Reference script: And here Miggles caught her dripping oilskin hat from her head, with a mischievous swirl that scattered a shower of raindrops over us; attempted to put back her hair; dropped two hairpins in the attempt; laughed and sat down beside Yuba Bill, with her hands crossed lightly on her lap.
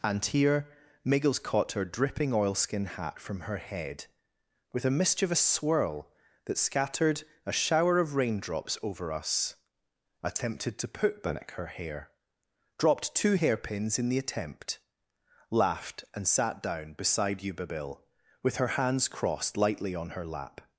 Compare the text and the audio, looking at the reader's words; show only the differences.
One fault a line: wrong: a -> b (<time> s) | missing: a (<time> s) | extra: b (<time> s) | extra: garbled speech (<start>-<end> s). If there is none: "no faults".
no faults